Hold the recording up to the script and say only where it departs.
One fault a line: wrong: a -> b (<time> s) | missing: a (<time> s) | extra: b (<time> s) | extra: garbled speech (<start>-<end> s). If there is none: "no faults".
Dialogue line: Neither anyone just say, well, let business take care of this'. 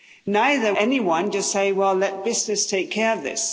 no faults